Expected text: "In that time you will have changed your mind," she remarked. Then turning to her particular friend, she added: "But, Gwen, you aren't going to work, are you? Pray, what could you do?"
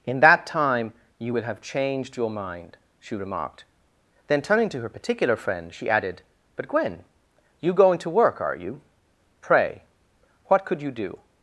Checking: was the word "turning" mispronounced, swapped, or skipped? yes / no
no